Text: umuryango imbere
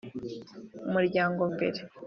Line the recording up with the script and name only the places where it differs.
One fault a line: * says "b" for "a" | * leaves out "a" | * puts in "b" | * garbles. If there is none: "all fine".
all fine